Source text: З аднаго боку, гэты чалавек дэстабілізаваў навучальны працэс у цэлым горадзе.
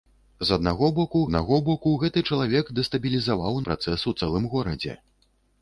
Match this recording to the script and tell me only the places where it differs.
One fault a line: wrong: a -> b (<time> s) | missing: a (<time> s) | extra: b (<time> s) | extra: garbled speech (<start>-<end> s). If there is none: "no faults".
extra: аднаго боку (1.3 s)
missing: навучальны (3.6 s)